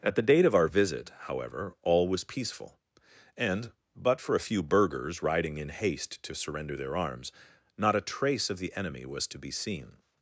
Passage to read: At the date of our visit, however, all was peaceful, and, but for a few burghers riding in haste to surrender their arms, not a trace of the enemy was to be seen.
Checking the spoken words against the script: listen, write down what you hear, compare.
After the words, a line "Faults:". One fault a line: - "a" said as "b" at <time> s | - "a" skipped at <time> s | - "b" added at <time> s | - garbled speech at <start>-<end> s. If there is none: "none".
At the date of our visit, however, all was peaceful, and, but for a few burghers riding in haste to surrender their arms, not a trace of the enemy was to be seen.
Faults:
none